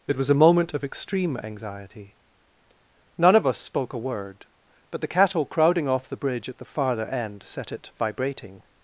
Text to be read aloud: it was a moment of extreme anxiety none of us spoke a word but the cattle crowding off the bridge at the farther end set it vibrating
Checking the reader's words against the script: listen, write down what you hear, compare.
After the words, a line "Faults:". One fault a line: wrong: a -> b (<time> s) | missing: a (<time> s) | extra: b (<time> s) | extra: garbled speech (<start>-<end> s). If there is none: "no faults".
it was a moment of extreme anxiety none of us spoke a word but the cattle crowding off the bridge at the farther end set it vibrating
Faults:
no faults